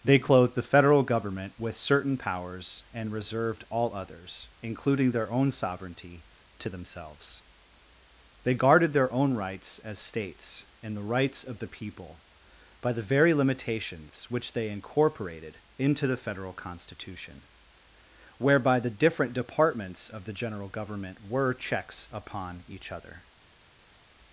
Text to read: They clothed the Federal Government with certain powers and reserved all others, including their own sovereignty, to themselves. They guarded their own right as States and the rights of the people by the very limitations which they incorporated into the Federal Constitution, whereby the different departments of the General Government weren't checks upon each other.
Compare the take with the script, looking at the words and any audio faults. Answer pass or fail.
fail